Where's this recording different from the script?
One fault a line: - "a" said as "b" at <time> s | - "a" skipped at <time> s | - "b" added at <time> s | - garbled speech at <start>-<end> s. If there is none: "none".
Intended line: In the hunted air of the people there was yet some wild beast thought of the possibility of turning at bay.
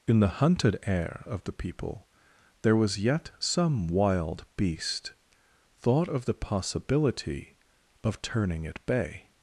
none